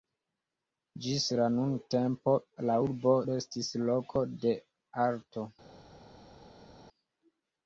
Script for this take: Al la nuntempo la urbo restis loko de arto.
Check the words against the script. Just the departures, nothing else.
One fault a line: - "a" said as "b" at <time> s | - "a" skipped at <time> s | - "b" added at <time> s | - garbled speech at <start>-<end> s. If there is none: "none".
- "Al" said as "Ĝis" at 1.1 s